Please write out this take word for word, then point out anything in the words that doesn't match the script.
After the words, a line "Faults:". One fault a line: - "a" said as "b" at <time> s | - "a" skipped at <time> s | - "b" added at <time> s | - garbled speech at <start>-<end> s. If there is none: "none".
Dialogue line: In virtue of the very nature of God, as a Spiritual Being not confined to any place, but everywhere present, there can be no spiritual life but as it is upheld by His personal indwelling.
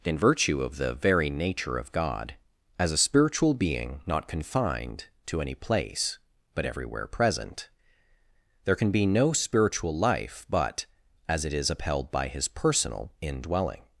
In virtue of the very nature of God, as a Spiritual Being not confined to any place, but everywhere present, there can be no spiritual life but as it is upheld by His personal indwelling.
Faults:
none